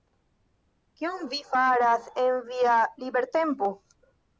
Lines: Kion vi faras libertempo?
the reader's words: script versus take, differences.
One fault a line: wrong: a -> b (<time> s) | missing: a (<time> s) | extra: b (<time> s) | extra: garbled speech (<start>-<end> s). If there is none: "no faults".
extra: en via (2.2 s)